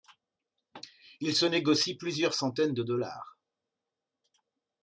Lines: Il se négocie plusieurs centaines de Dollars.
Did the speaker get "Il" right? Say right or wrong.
right